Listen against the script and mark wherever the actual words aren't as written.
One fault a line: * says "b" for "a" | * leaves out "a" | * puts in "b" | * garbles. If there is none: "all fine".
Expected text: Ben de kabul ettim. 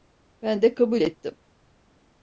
all fine